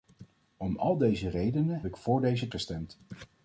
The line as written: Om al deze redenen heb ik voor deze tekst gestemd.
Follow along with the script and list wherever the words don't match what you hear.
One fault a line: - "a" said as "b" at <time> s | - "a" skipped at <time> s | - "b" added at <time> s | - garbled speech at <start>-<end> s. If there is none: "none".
- "heb" skipped at 1.8 s
- "tekst" skipped at 2.5 s